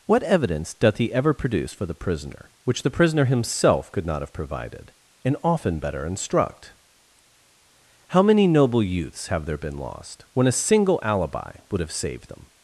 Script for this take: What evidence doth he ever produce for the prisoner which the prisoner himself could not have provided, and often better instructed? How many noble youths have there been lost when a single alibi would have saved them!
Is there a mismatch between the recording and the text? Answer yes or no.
yes